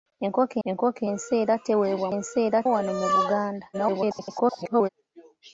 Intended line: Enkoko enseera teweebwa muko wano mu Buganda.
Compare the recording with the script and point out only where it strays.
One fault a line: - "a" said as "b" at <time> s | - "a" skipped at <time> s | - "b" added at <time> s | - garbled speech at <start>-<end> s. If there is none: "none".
- "enkoko" added at 0.7 s
- "muko" said as "enseera" at 2.2 s
- garbled speech at 3.7-4.9 s